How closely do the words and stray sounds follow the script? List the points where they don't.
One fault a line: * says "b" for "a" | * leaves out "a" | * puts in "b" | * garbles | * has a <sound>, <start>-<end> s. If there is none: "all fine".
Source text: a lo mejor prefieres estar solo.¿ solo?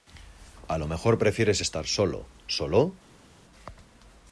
all fine